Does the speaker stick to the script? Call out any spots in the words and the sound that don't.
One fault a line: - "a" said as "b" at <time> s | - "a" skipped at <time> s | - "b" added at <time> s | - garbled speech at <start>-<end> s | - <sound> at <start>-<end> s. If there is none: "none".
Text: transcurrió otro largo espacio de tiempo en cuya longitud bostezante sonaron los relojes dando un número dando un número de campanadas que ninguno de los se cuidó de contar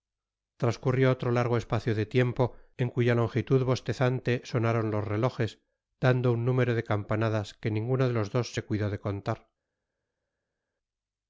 - "dando un número" skipped at 6.7 s
- "dos" added at 8.3 s